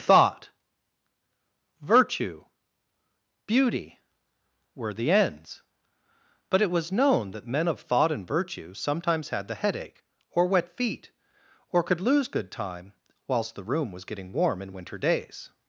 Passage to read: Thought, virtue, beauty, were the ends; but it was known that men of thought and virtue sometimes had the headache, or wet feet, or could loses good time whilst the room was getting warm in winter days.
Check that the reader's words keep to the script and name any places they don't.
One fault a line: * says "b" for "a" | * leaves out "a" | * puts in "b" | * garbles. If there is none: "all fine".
* says "lose" for "loses"